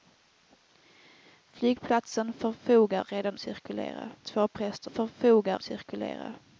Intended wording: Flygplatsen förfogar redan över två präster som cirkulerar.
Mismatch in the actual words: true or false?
true